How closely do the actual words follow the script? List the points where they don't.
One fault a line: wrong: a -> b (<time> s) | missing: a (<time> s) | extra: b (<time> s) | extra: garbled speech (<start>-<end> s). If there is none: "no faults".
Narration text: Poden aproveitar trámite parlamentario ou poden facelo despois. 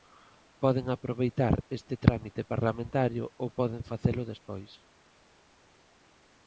extra: este (1.8 s)